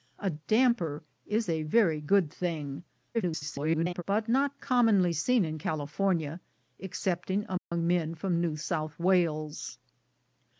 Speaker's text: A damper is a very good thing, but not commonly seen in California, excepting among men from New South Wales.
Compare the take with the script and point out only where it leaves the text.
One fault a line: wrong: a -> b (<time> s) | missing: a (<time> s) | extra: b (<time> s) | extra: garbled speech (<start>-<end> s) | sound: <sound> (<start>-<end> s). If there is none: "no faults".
extra: garbled speech (3.1-4.0 s)
sound: dropout (7.6-7.7 s)